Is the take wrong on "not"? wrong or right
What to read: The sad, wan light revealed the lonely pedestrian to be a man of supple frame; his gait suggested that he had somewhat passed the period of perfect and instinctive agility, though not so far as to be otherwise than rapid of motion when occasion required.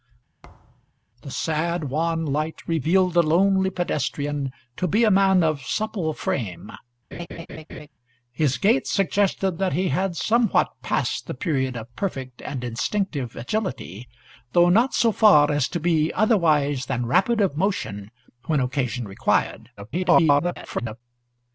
right